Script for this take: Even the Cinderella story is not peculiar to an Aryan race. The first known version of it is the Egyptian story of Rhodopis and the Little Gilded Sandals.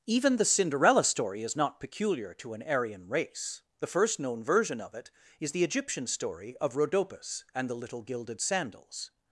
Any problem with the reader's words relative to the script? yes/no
no